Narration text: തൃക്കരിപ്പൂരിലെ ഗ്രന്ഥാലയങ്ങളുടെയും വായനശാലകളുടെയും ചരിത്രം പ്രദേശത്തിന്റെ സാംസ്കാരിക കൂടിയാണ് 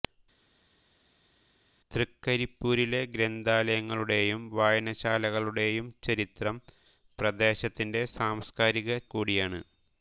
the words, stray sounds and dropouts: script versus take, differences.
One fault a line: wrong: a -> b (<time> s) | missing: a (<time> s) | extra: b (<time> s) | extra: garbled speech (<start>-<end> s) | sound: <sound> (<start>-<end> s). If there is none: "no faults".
no faults